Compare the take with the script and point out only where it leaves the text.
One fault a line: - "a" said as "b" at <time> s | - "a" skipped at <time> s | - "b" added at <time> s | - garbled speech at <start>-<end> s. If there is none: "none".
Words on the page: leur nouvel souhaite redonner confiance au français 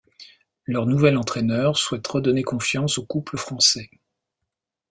- "entraîneur" added at 1.1 s
- "couple" added at 3.1 s